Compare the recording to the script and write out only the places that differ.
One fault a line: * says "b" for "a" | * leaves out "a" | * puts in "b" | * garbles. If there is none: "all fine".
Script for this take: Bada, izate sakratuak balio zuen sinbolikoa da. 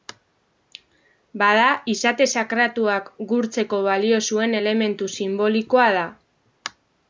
* puts in "gurtzeko"
* puts in "elementu"